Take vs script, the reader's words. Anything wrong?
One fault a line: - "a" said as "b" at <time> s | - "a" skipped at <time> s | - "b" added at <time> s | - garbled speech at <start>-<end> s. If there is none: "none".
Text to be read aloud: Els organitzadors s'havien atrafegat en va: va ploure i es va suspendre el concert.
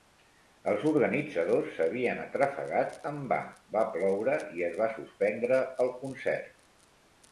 none